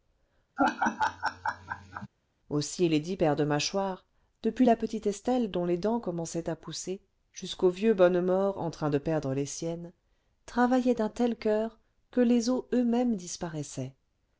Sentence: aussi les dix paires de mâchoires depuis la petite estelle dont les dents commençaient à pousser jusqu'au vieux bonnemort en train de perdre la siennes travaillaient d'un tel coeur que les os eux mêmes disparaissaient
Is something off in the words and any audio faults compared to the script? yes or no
yes